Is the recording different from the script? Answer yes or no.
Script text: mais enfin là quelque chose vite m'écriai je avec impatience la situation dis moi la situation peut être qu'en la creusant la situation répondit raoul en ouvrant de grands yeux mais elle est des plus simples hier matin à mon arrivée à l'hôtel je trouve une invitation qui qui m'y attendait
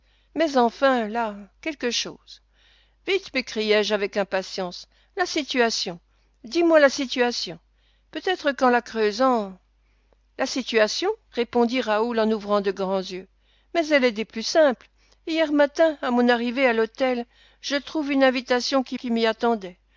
no